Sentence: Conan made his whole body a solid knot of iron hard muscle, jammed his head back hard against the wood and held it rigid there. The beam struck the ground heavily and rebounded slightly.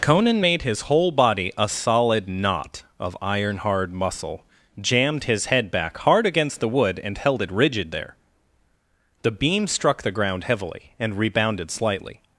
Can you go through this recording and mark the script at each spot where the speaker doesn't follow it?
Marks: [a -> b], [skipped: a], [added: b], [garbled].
Conan made his whole body a solid knot of iron hard muscle, jammed his head back hard against the wood and held it rigid there. The beam struck the ground heavily and rebounded slightly.